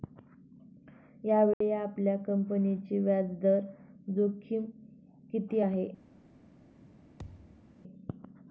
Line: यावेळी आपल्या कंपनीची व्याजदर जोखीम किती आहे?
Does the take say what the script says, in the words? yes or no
yes